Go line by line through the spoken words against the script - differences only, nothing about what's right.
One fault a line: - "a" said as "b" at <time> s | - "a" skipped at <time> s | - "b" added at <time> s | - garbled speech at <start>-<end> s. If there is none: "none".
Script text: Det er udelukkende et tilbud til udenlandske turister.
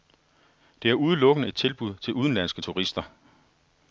none